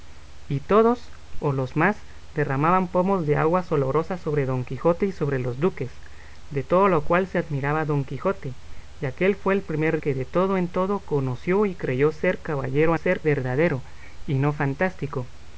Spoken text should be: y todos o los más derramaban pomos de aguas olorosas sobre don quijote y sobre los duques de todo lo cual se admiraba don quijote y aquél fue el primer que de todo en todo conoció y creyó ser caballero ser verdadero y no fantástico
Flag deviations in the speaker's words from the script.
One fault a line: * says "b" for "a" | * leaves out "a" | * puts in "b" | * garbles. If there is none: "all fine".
all fine